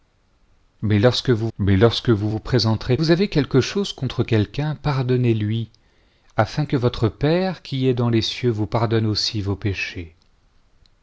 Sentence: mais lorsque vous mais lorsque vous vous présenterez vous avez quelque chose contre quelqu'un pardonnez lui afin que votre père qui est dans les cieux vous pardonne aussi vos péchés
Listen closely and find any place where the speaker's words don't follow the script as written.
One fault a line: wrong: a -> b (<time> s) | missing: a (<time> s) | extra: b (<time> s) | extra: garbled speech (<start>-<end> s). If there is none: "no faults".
no faults